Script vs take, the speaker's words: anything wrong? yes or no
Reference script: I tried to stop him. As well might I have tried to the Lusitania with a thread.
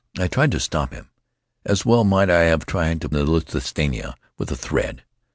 no